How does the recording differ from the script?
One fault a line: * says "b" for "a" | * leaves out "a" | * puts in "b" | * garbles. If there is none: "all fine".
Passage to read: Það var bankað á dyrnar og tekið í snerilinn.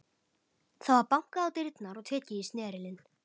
all fine